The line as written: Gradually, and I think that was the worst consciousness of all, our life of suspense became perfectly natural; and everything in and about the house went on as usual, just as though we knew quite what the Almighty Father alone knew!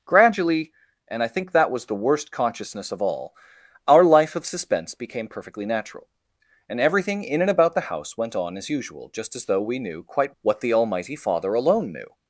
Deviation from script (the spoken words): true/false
false